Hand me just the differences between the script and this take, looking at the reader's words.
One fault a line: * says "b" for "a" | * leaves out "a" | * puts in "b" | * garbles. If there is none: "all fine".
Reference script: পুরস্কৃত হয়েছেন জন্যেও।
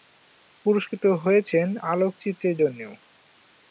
* puts in "আলোকচিত্রের"